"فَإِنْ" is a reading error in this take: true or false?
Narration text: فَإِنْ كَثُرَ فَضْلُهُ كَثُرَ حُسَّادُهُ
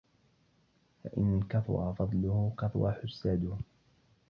false